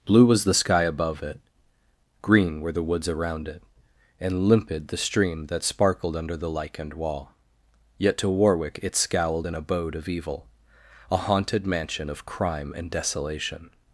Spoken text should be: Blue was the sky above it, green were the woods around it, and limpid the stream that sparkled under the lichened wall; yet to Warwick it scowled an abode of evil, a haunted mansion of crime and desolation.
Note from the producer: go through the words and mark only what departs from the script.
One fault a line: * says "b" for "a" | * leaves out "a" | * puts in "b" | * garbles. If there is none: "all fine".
all fine